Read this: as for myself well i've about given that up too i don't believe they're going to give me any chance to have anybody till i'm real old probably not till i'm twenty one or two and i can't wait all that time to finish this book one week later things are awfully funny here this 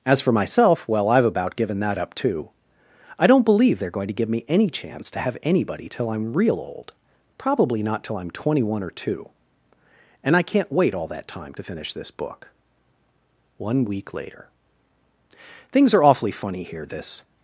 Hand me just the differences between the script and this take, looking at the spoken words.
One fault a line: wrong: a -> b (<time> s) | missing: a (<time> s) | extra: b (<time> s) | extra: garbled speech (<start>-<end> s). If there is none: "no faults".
no faults